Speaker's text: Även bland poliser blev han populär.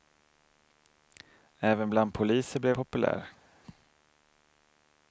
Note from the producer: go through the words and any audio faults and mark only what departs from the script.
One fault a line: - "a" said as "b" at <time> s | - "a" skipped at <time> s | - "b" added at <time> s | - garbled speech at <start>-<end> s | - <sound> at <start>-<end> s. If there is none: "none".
- "han" skipped at 2.8 s